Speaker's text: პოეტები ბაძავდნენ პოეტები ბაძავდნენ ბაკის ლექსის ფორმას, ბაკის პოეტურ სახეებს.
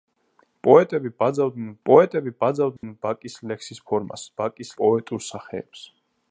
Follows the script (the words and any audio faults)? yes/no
no